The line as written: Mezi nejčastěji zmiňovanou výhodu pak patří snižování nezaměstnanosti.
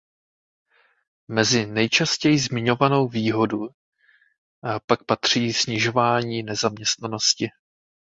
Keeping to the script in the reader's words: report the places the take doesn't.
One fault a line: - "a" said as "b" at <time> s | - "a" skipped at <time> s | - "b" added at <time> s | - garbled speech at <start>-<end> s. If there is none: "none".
none